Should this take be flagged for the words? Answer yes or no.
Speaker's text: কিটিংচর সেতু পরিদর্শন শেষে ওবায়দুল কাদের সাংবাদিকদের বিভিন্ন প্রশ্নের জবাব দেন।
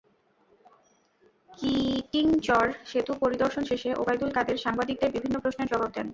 no